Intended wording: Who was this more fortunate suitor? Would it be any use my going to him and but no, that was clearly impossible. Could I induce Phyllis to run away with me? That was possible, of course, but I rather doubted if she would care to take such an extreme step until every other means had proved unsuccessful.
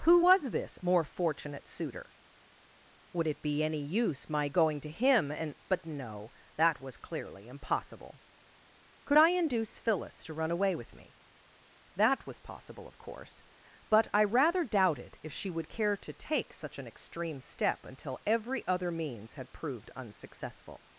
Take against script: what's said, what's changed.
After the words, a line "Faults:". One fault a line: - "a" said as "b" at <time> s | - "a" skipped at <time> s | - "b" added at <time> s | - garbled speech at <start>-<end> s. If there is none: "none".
Who was this more fortunate suitor? Would it be any use my going to him and but no, that was clearly impossible. Could I induce Phyllis to run away with me? That was possible, of course, but I rather doubted if she would care to take such an extreme step until every other means had proved unsuccessful.
Faults:
none